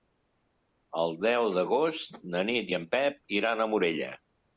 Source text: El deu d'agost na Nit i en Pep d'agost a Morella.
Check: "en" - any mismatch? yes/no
no